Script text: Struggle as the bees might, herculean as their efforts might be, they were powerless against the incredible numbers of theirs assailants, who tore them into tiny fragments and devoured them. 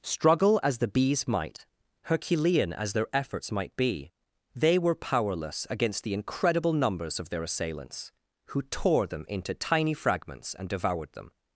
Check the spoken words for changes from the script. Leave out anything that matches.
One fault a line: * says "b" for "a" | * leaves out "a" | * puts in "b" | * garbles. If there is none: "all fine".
* says "their" for "theirs"